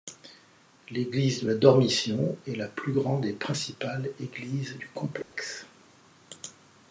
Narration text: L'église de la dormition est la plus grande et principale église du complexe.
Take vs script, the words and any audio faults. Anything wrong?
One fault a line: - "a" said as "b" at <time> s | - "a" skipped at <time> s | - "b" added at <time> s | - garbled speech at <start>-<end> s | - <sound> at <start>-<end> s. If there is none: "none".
- dropout at 5.2-5.4 s